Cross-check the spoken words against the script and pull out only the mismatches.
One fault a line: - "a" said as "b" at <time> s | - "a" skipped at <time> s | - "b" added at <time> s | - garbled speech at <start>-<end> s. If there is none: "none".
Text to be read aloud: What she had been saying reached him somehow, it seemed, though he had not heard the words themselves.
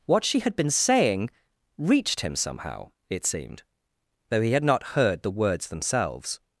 none